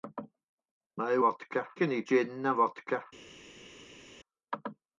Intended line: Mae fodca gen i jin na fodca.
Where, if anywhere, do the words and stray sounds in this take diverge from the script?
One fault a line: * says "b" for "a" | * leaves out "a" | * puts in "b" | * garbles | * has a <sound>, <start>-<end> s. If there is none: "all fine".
all fine